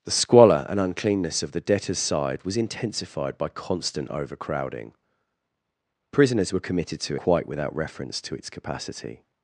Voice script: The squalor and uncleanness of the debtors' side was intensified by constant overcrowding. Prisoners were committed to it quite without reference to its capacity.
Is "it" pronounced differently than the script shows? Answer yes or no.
yes